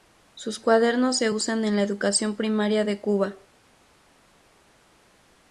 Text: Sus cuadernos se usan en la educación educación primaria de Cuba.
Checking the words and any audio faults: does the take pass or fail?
fail